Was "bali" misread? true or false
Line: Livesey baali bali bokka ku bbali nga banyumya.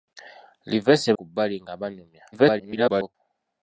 true